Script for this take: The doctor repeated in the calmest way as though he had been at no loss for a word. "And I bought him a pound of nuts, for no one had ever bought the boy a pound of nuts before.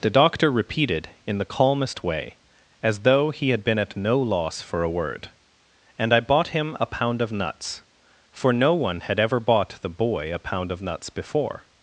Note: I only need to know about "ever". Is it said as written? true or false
true